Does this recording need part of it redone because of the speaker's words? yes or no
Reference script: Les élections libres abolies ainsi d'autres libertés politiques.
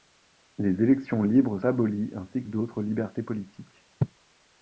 no